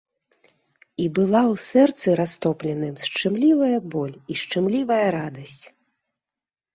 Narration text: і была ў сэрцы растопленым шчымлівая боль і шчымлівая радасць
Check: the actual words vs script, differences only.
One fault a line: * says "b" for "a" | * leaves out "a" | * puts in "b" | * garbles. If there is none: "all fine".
all fine